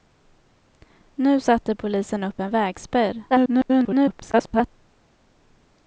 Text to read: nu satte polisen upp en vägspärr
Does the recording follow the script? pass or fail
fail